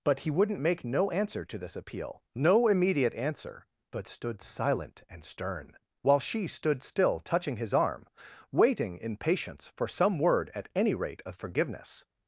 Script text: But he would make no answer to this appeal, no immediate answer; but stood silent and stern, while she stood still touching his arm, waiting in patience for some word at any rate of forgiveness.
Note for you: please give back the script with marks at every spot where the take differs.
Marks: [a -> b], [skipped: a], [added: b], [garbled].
But he [would -> wouldn't] make no answer to this appeal, no immediate answer; but stood silent and stern, while she stood still touching his arm, waiting in patience for some word at any rate of forgiveness.